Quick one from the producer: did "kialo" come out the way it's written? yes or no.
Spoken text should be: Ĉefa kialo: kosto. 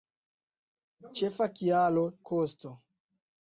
yes